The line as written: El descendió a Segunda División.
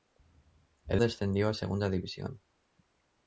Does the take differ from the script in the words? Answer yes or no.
no